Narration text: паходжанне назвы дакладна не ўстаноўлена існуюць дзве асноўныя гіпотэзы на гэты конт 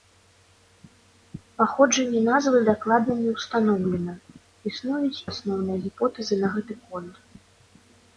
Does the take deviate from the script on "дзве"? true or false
true